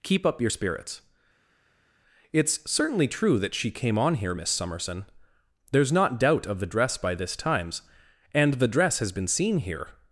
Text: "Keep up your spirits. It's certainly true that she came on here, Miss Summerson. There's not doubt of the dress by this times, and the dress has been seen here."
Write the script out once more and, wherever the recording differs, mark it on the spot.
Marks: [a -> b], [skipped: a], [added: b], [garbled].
"Keep up your spirits. It's certainly true that she came on here, Miss Summerson. There's not doubt of the dress by this times, and the dress has been seen here."